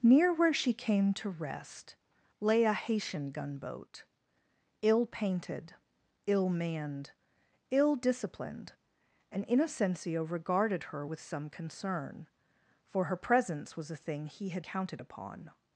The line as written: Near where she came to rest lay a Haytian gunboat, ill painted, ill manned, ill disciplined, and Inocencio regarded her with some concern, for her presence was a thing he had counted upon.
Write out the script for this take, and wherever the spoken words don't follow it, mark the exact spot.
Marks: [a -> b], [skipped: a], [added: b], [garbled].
Near where she came to rest lay a Haytian gunboat, ill painted, ill manned, ill disciplined, and Inocencio regarded her with some concern, for her presence was a thing he had counted upon.